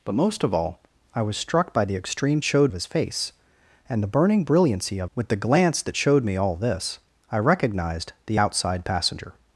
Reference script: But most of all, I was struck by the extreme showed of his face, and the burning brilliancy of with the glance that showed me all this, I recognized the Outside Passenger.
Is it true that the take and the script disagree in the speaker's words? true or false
false